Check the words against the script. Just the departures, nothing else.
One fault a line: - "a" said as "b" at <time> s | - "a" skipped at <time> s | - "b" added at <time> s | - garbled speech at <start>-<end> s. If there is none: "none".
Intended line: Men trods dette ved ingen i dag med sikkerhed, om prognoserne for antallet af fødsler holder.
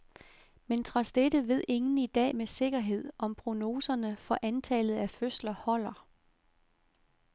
none